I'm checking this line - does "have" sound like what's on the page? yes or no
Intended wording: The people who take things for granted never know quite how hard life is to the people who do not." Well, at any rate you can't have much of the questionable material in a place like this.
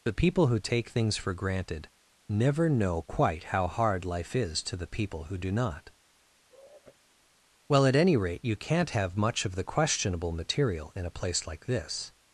yes